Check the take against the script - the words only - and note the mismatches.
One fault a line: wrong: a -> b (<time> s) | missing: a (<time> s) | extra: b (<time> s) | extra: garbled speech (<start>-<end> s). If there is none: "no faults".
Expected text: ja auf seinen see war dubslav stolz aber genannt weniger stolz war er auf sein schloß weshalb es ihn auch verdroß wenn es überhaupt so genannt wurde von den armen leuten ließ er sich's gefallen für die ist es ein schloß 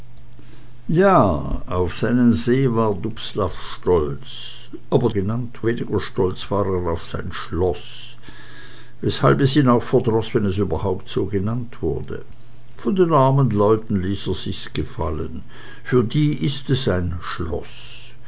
no faults